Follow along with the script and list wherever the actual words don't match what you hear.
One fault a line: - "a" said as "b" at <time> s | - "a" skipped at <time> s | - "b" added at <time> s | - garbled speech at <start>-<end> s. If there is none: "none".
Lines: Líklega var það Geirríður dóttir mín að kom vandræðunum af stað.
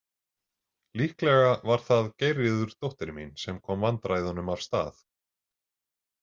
- "að" said as "sem" at 3.4 s